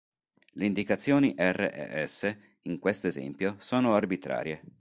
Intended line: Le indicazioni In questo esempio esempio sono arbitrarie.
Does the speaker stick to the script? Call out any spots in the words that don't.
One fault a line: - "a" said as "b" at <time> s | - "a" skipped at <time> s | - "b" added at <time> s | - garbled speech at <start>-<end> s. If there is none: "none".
- "R e S" added at 1.4 s
- "esempio" skipped at 3.5 s